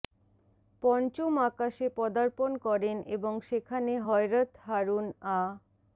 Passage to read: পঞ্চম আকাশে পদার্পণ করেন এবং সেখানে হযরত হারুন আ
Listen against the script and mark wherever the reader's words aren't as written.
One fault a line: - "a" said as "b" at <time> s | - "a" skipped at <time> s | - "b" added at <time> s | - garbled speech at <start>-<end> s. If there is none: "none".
none